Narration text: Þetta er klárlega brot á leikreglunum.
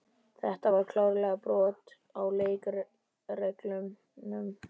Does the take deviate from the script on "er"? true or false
true